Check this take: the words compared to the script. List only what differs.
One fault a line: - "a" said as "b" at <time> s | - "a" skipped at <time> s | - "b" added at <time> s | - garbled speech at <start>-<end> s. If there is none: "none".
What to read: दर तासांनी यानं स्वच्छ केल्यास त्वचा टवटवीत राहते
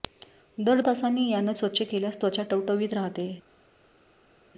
none